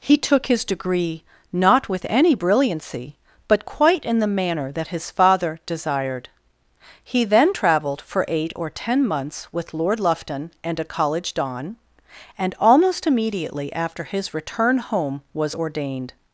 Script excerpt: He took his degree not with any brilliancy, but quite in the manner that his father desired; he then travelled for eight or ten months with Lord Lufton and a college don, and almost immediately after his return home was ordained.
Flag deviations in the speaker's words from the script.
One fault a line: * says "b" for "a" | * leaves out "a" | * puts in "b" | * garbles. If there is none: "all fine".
all fine